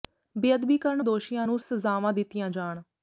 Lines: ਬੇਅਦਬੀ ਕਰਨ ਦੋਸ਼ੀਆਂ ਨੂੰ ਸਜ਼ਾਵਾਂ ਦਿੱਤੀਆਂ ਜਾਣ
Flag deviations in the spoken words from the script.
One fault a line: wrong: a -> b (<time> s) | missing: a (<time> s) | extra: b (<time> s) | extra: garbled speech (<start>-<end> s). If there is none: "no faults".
no faults